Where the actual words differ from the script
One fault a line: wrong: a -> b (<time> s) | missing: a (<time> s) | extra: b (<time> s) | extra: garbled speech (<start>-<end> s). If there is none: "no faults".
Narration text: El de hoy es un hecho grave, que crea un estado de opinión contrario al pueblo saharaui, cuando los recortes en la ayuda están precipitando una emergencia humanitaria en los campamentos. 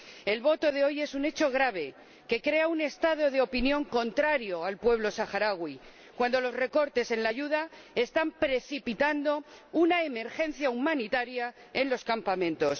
extra: voto (0.4 s)